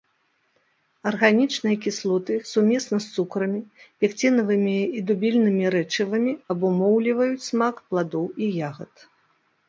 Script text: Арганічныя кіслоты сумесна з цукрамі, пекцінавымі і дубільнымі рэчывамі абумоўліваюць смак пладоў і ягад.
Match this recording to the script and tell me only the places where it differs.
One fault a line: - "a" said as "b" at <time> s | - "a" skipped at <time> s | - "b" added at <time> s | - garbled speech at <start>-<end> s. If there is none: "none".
none